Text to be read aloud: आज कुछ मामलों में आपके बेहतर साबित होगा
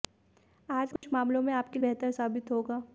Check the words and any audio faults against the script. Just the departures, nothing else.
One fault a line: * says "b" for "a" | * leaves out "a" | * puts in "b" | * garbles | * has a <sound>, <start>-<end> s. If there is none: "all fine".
* has a dropout, 1.0-1.0 s